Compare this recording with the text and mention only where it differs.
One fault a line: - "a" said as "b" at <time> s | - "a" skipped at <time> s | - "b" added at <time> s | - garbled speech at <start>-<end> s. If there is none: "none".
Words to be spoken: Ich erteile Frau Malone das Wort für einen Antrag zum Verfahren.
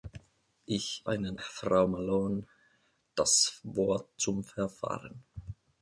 - "erteile" said as "einen" at 1.1 s
- "für einen Antrag" skipped at 4.2 s